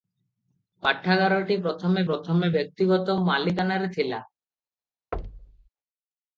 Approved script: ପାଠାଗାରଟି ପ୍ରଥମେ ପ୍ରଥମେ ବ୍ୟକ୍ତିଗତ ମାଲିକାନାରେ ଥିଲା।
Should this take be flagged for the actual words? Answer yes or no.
no